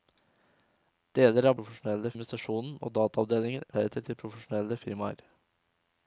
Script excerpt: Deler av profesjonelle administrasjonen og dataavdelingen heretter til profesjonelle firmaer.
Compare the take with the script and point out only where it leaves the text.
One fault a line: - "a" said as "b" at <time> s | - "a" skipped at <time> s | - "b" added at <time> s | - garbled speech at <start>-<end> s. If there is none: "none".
none